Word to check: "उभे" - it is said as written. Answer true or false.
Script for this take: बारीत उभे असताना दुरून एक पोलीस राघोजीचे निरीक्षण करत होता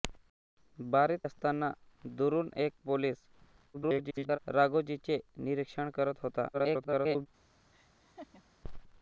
false